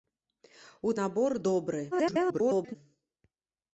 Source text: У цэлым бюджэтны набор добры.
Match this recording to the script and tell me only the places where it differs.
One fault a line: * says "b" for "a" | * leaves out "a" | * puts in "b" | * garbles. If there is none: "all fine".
* leaves out "цэлым бюджэтны"
* garbles